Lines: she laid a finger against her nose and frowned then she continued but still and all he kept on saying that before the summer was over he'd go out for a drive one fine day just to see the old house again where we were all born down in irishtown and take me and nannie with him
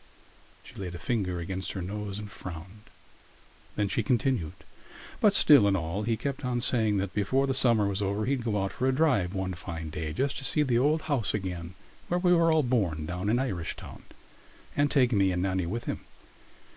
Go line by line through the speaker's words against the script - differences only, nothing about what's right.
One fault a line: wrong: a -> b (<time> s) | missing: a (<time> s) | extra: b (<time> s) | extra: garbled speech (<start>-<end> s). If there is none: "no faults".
no faults